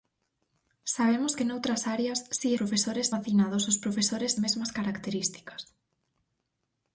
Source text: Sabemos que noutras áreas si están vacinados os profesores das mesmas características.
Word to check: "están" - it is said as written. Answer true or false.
false